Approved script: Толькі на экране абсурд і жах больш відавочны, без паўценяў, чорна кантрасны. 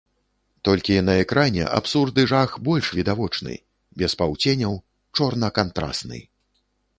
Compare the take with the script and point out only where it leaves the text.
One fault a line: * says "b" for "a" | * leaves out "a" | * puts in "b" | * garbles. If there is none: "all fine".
all fine